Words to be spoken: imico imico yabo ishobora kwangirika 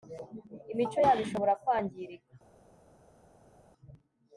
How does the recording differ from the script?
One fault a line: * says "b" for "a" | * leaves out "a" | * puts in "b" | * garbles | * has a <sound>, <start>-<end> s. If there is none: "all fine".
* leaves out "imico"